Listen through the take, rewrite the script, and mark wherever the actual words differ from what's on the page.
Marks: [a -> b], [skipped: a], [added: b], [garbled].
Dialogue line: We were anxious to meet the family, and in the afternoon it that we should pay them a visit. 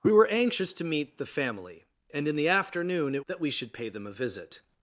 We were anxious to meet the family, and in the afternoon it that we should pay them a visit.